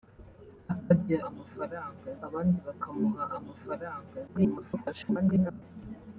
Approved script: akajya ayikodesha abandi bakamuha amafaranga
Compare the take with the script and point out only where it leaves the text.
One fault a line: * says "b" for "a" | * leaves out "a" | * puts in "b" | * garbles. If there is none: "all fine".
* says "amafaranga" for "ayikodesha"
* garbles